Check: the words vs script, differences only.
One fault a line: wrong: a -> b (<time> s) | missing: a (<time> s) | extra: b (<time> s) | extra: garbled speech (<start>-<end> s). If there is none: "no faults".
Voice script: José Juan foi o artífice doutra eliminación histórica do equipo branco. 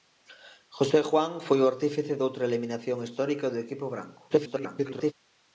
extra: garbled speech (4.3-5.1 s)